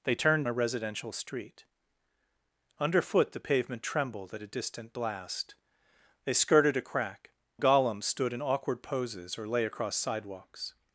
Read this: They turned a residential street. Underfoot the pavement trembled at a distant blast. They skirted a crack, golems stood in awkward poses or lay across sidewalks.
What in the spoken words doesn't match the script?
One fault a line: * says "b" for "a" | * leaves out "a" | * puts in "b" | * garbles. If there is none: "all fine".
all fine